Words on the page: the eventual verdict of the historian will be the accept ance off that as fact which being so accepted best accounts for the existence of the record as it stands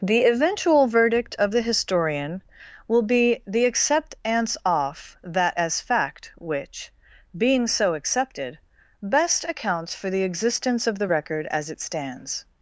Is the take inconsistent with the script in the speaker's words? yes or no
no